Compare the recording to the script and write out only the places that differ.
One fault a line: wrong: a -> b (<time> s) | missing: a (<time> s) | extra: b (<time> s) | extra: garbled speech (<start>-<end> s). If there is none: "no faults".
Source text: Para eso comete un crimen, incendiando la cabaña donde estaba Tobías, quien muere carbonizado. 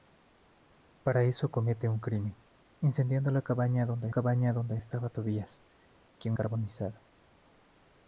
extra: cabaña donde (4.1 s)
missing: muere (6.4 s)